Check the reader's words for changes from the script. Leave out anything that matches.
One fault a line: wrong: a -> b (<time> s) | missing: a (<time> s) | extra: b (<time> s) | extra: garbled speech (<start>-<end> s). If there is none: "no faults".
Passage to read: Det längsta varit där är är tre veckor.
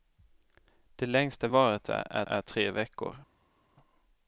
no faults